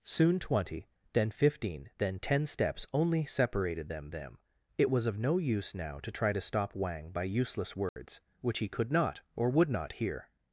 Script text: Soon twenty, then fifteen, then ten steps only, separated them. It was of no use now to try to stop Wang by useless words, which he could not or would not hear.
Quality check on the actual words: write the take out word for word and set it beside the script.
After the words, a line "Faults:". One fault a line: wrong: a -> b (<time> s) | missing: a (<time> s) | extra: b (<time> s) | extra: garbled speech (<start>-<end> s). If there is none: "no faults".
Soon twenty, then fifteen, then ten steps only, separated them them. It was of no use now to try to stop Wang by useless words, which he could not or would not hear.
Faults:
extra: them (4.1 s)